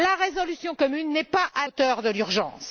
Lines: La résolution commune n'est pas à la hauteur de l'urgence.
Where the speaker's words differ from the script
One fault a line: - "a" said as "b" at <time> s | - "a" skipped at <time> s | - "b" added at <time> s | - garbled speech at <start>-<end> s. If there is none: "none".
- "la" skipped at 1.7 s